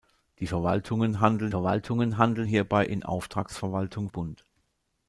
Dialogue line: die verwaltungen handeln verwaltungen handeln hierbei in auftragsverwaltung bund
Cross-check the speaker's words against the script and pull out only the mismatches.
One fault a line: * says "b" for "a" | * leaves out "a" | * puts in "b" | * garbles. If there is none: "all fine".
all fine